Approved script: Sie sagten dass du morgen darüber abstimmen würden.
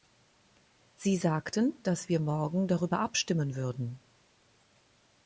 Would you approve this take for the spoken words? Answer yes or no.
no